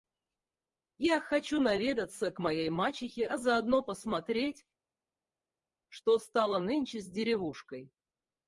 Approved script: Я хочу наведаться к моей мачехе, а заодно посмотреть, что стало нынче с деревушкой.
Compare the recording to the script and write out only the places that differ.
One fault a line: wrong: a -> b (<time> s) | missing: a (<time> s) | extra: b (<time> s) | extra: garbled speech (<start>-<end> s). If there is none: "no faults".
no faults